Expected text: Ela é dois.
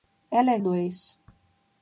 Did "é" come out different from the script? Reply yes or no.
no